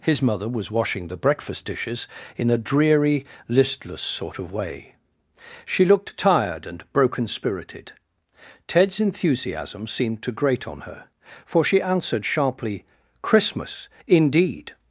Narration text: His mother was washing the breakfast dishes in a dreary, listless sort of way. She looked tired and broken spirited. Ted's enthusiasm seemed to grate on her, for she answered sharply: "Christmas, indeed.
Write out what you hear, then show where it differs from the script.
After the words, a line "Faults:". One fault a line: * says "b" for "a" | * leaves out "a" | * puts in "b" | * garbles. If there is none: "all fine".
His mother was washing the breakfast dishes in a dreary, listless sort of way. She looked tired and broken spirited. Ted's enthusiasm seemed to grate on her, for she answered sharply: "Christmas, indeed.
Faults:
all fine